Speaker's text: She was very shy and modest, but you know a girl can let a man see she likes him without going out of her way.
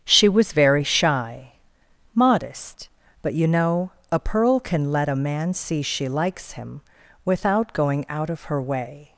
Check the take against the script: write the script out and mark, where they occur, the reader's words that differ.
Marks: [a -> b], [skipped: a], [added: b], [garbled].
She was very shy [skipped: and] modest, but you know a [girl -> pearl] can let a man see she likes him without going out of her way.